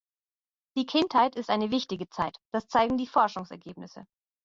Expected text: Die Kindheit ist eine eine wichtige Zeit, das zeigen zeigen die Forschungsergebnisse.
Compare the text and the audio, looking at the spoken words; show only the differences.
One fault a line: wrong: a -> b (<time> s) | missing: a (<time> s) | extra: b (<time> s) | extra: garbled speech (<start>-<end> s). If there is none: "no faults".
missing: eine (1.7 s)
missing: zeigen (3.0 s)